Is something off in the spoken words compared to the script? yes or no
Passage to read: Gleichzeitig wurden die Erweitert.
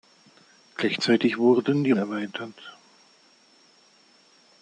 no